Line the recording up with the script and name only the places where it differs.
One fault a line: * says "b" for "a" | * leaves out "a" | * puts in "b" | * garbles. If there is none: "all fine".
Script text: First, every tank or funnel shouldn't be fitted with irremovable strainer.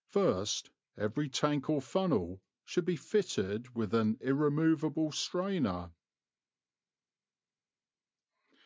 * says "should" for "shouldn't"
* puts in "an"